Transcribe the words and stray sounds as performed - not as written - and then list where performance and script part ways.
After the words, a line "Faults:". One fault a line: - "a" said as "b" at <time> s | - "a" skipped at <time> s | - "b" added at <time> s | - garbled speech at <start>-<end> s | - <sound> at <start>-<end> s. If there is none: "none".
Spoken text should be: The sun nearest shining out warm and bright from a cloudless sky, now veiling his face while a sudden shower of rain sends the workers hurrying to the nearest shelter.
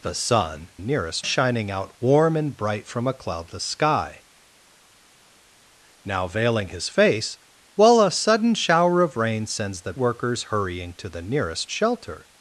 The sun nearest shining out warm and bright from a cloudless sky, now veiling his face while a sudden shower of rain sends the workers hurrying to the nearest shelter.
Faults:
none